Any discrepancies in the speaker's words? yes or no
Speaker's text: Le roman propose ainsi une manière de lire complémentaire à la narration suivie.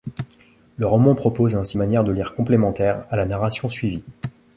yes